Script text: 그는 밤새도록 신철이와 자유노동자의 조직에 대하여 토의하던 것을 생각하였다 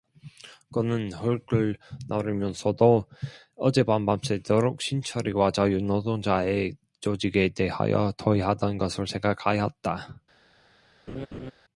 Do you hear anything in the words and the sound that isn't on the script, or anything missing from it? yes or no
yes